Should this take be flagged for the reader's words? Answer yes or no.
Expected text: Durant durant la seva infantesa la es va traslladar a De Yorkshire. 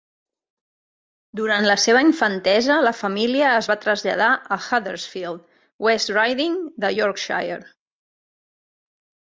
yes